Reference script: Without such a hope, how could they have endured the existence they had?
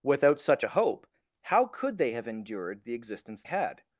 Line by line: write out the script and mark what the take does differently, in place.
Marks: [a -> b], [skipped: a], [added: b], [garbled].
Without such a hope, how could they have endured the existence [skipped: they] had?